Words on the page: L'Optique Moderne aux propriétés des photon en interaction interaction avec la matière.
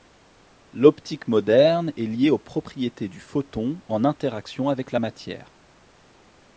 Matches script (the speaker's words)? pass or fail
fail